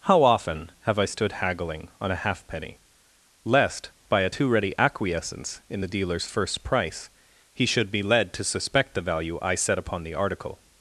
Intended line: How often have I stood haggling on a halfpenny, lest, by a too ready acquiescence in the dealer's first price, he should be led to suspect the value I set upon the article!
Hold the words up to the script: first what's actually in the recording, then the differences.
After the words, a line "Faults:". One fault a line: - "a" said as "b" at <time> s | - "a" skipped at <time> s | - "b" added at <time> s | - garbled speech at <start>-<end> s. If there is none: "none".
How often have I stood haggling on a halfpenny, lest, by a too ready acquiescence in the dealer's first price, he should be led to suspect the value I set upon the article!
Faults:
none